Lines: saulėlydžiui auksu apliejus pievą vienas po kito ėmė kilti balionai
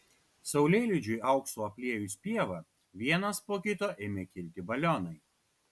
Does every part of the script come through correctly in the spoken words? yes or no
yes